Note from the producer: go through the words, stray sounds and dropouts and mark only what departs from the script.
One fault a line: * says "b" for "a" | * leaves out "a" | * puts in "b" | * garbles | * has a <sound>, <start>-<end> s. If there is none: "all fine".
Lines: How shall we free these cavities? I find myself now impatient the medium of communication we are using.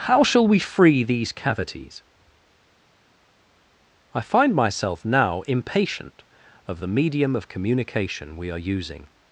* puts in "of"